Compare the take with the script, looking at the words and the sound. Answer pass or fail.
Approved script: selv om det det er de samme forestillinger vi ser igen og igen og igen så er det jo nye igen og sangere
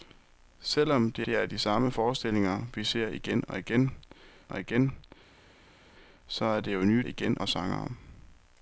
pass